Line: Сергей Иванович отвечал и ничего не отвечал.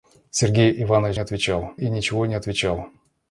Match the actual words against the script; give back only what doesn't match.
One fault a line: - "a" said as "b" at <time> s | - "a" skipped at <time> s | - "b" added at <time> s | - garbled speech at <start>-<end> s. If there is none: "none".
none